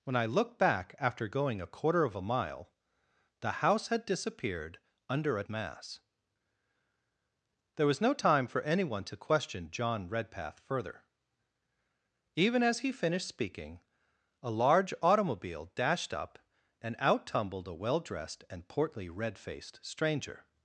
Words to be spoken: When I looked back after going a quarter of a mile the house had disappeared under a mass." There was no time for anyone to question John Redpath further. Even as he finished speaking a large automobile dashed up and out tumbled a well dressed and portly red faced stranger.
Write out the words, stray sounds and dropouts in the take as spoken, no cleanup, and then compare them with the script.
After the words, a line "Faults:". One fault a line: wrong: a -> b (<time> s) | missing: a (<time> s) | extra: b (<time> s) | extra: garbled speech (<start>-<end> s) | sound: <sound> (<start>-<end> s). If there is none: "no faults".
When I looked back after going a quarter of a mile the house had disappeared under a mass." There was no time for anyone to question John Redpath further. Even as he finished speaking a large automobile dashed up and out tumbled a well dressed and portly red faced stranger.
Faults:
no faults